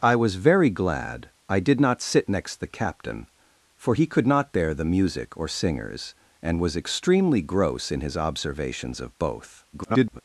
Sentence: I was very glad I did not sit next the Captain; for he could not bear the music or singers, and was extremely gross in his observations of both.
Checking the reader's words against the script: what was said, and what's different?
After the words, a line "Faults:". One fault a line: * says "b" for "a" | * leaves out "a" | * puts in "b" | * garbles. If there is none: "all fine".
I was very glad I did not sit next the Captain; for he could not bear the music or singers, and was extremely gross in his observations of both. [garbled]
Faults:
* garbles